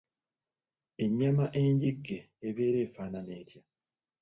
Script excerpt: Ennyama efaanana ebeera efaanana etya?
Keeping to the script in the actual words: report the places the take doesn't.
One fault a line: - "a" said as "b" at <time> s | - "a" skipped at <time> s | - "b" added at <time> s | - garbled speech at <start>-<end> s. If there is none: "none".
- "efaanana" said as "enjigge" at 1.6 s